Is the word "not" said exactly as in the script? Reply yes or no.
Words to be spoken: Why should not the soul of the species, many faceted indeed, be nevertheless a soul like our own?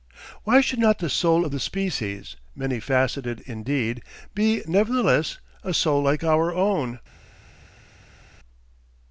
yes